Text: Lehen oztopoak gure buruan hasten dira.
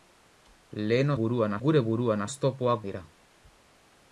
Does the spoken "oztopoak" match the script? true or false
false